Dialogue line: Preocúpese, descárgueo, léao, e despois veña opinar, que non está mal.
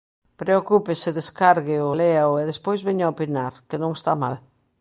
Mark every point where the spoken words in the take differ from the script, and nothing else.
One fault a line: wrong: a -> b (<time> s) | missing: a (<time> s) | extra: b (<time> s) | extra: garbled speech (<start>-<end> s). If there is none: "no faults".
no faults